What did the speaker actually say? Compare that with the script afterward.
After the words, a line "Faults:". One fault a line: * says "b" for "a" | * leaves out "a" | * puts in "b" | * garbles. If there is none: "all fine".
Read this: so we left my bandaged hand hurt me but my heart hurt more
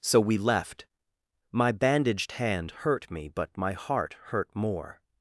so we left my bandaged hand hurt me but my heart hurt more
Faults:
all fine